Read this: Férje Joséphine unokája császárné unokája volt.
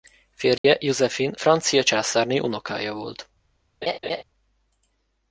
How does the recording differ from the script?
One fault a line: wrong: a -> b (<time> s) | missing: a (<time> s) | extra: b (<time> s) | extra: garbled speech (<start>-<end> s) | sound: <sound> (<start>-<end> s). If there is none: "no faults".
sound: dropout (0.6-0.6 s)
wrong: unokája -> francia (1.3 s)
sound: laugh (3.8-4.2 s)